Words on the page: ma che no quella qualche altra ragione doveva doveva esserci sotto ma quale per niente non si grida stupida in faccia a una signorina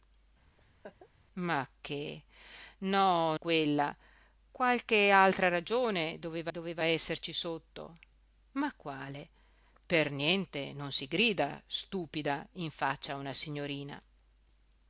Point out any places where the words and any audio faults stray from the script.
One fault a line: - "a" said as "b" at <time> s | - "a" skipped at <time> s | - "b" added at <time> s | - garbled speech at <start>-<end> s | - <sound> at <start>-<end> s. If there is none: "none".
- laugh at 0.6-1.1 s